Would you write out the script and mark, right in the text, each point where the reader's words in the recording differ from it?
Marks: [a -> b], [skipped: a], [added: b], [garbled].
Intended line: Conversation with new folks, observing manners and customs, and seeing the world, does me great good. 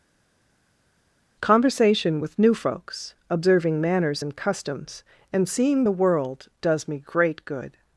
Conversation with new folks, observing manners and customs, and seeing the world, does me great good.